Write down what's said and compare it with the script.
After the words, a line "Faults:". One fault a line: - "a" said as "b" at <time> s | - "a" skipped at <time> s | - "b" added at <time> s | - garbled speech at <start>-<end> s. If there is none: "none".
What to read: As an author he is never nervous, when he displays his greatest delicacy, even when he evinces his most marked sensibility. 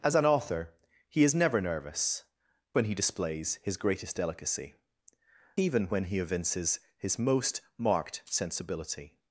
As an author he is never nervous, when he displays his greatest delicacy, even when he evinces his most marked sensibility.
Faults:
none